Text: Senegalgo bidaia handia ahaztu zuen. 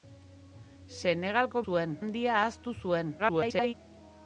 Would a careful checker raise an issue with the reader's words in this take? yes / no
yes